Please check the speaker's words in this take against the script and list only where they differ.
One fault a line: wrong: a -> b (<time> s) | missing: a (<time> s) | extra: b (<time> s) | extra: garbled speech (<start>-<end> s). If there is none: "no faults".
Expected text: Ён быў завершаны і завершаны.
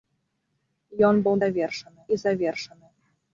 no faults